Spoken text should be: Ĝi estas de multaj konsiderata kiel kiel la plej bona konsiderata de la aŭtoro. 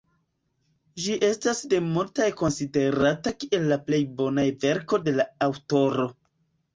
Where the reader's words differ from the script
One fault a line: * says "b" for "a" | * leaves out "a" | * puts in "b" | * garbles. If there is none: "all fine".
* leaves out "kiel"
* says "verko" for "konsiderata"